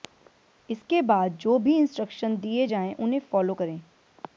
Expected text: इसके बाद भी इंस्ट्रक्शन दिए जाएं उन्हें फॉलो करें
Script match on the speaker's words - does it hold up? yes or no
no